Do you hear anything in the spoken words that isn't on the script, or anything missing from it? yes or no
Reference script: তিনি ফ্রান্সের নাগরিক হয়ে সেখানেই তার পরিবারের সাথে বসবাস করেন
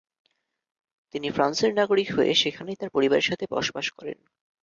no